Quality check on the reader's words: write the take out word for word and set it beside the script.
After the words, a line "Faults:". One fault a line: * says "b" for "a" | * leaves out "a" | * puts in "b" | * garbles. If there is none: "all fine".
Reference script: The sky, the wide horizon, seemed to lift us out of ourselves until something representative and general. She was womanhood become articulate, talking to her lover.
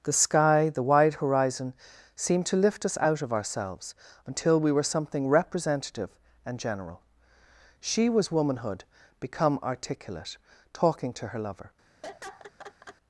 The sky, the wide horizon, seemed to lift us out of ourselves until we were something representative and general. She was womanhood become articulate, talking to her lover.
Faults:
* puts in "we were"